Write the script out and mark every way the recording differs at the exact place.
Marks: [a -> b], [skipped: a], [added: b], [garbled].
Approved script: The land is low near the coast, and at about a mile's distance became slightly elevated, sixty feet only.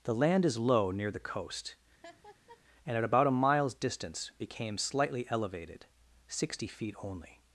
The land is low near the coast, and at about a mile's distance became slightly elevated, sixty feet only.